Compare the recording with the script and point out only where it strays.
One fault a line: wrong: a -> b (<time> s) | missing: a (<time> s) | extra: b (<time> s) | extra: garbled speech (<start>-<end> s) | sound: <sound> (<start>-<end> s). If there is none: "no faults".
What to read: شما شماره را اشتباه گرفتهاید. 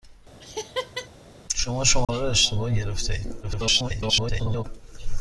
sound: laugh (0.4-1.1 s)
sound: dropout (2.0-2.1 s)
extra: garbled speech (3.4-4.6 s)